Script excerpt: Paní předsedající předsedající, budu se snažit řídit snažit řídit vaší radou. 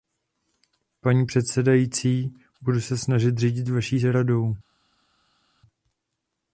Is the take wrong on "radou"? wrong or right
right